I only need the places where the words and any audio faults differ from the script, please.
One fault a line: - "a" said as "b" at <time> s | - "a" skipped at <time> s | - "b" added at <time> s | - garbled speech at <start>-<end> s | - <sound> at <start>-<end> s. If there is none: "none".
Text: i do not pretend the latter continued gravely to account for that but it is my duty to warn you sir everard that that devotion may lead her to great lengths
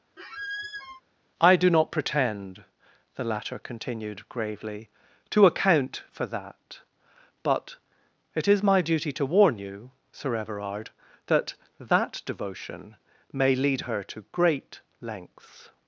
- squeak at 0.2-1.0 s